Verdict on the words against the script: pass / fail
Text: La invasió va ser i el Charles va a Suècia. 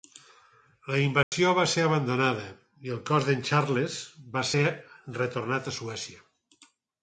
fail